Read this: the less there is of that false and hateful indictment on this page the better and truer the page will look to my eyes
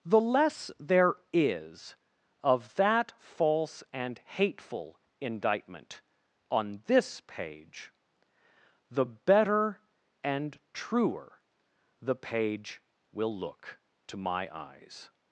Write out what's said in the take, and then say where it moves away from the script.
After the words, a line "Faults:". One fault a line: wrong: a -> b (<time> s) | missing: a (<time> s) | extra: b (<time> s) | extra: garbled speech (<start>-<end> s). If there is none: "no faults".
the less there is of that false and hateful indictment on this page the better and truer the page will look to my eyes
Faults:
no faults